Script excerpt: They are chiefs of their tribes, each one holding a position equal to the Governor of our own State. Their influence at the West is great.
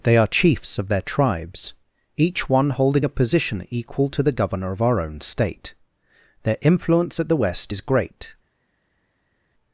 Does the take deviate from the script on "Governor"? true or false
false